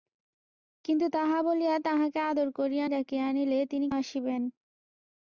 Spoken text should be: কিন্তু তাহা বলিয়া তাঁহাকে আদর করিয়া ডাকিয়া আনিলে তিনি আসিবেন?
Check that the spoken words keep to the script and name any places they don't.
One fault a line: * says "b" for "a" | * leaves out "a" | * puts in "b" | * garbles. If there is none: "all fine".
all fine